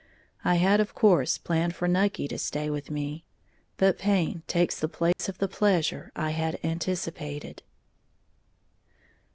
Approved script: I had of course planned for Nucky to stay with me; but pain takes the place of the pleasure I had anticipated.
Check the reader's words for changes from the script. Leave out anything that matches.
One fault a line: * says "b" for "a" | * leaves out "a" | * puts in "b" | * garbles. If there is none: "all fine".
all fine